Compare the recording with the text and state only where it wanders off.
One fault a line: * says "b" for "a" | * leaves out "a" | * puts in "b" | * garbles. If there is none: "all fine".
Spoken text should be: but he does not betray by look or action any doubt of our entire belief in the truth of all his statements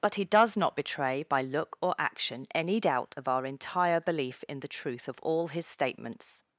all fine